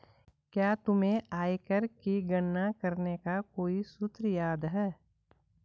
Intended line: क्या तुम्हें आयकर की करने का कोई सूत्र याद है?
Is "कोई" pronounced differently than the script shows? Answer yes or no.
no